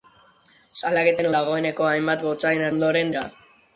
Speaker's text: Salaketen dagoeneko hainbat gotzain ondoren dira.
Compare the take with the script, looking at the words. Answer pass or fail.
pass